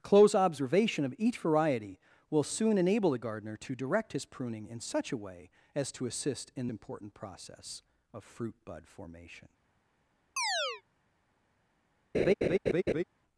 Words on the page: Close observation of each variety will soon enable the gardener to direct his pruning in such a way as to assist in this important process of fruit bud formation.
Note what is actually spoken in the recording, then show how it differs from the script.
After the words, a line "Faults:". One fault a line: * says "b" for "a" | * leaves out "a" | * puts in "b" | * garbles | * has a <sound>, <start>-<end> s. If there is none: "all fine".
Close observation of each variety will soon enable the gardener to direct his pruning in such a way as to assist in important process of fruit bud formation.
Faults:
* leaves out "this"
* has a chirp, 10.4-10.8 s
* has a laugh, 12.1-13.0 s